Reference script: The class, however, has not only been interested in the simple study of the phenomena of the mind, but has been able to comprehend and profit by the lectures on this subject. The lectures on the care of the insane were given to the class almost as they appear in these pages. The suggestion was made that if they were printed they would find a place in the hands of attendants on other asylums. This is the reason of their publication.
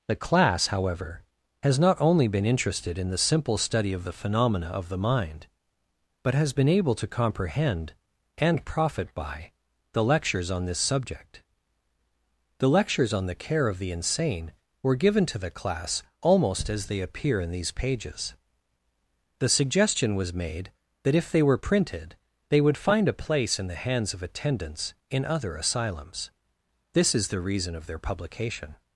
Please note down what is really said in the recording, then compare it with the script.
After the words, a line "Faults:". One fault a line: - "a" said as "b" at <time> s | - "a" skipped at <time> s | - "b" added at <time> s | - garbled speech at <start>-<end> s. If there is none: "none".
The class, however, has not only been interested in the simple study of the phenomena of the mind, but has been able to comprehend and profit by the lectures on this subject. The lectures on the care of the insane were given to the class almost as they appear in these pages. The suggestion was made that if they were printed they would find a place in the hands of attendants in other asylums. This is the reason of their publication.
Faults:
- "on" said as "in" at 25.1 s